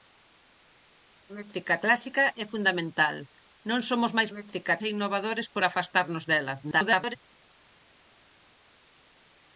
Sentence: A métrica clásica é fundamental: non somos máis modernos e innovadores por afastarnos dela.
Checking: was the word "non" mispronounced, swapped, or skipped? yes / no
no